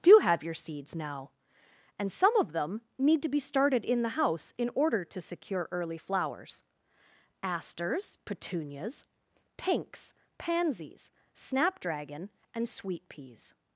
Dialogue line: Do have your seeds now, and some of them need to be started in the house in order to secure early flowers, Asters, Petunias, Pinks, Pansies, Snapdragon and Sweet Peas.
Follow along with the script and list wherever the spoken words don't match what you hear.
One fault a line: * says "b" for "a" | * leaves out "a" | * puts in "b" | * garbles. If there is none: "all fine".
all fine